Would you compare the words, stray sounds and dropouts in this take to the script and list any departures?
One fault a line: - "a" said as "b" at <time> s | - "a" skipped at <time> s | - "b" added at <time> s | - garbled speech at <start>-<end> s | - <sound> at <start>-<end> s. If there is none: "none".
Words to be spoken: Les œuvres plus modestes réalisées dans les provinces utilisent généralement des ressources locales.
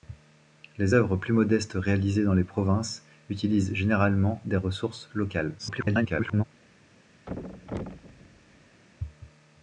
- garbled speech at 5.6-6.4 s
- thud at 7.3-8.8 s